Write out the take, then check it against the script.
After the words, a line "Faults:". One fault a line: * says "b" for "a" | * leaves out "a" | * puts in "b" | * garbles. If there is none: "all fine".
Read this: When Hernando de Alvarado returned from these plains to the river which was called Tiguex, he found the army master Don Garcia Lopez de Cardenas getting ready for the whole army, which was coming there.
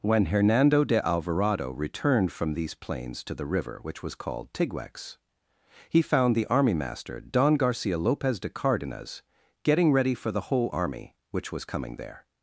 When Hernando de Alvarado returned from these plains to the river which was called Tiguex, he found the army master Don Garcia Lopez de Cardenas getting ready for the whole army, which was coming there.
Faults:
all fine